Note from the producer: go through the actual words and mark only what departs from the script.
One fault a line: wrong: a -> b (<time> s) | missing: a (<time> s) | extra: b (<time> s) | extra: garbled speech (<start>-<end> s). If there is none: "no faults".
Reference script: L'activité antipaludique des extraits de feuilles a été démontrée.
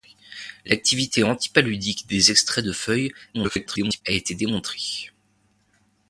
extra: garbled speech (3.3-4.0 s)